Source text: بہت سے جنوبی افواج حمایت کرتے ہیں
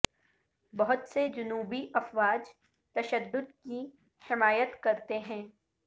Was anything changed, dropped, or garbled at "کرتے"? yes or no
no